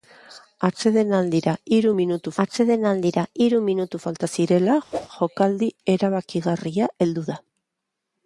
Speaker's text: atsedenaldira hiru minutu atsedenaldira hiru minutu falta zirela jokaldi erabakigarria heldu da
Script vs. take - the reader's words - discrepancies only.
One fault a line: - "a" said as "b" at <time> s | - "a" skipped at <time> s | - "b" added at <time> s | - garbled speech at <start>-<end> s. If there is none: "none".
none